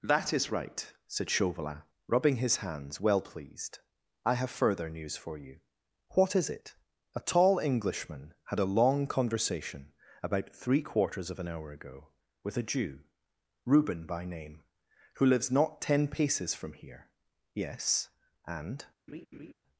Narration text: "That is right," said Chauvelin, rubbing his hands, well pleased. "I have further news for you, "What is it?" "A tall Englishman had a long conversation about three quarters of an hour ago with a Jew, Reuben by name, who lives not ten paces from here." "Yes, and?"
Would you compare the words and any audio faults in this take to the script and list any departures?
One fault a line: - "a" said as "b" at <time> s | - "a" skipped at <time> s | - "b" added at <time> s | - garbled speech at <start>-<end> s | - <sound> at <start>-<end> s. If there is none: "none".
- laugh at 19.1-19.5 s